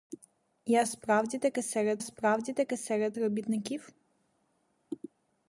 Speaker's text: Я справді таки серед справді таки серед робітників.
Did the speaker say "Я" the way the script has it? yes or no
yes